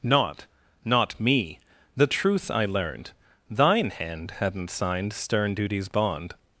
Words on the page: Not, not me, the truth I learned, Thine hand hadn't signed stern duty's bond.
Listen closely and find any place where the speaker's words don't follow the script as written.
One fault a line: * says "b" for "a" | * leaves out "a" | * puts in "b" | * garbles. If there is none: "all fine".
all fine